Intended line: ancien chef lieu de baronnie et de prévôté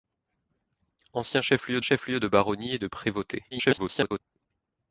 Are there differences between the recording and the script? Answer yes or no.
yes